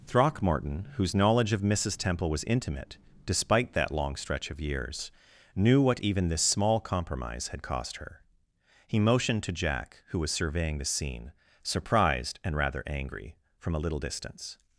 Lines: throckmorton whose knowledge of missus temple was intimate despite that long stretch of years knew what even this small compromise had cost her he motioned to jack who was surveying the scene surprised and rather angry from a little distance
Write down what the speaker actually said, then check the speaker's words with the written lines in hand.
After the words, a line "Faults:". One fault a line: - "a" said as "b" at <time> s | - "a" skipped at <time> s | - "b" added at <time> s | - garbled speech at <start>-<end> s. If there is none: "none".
throckmorton whose knowledge of missus temple was intimate despite that long stretch of years knew what even this small compromise had cost her he motioned to jack who was surveying the scene surprised and rather angry from a little distance
Faults:
none